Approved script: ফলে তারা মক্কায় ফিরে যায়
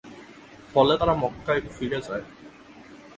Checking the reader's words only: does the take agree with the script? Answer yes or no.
yes